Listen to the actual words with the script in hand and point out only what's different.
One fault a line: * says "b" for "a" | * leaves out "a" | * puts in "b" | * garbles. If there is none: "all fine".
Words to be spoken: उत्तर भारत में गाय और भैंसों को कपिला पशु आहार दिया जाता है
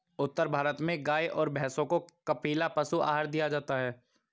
all fine